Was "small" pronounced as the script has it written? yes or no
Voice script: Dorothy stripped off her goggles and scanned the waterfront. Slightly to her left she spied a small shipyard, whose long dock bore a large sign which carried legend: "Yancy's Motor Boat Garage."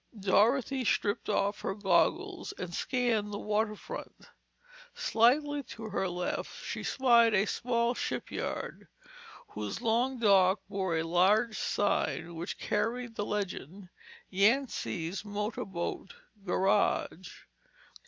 yes